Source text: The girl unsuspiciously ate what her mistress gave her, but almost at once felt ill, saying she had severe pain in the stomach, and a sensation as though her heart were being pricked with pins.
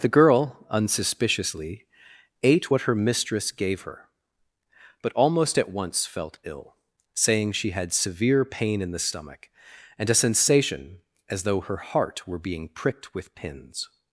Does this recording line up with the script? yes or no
yes